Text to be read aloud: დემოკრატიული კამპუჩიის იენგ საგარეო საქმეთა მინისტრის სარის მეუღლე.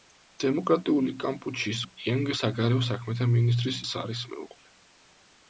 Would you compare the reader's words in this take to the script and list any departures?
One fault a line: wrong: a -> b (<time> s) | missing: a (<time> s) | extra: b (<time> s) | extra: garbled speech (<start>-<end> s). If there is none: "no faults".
no faults